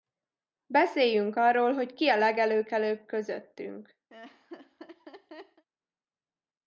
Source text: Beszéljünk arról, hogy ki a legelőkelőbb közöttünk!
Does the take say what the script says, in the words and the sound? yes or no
no